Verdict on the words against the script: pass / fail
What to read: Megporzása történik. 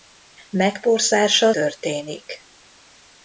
pass